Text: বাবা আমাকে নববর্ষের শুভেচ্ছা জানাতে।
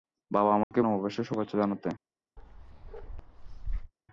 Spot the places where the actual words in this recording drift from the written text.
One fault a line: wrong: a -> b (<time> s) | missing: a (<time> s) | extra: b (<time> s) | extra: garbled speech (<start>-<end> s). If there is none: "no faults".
no faults